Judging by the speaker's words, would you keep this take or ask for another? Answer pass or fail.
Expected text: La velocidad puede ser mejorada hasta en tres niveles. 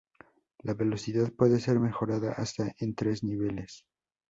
pass